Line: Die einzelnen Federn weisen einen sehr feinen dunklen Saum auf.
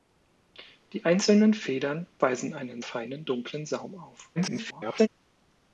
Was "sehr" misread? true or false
true